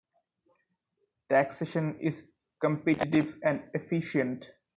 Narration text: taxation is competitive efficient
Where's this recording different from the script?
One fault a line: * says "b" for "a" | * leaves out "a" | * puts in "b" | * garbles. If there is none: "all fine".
* puts in "and"